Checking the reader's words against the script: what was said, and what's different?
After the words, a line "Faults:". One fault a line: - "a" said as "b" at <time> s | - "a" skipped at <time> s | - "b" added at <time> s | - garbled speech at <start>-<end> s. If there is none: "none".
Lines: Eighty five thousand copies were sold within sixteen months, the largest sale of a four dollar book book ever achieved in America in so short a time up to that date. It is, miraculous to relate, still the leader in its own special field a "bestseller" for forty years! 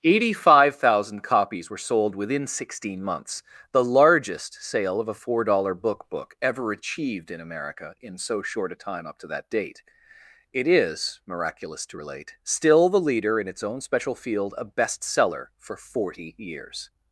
Eighty five thousand copies were sold within sixteen months, the largest sale of a four dollar book book ever achieved in America in so short a time up to that date. It is, miraculous to relate, still the leader in its own special field a "bestseller" for forty years!
Faults:
none